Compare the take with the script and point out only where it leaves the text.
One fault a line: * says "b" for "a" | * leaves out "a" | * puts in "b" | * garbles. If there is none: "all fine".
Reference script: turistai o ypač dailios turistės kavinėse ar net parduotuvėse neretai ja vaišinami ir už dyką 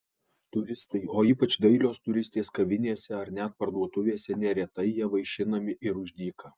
all fine